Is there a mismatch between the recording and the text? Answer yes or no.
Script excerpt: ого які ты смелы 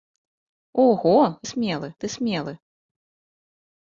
yes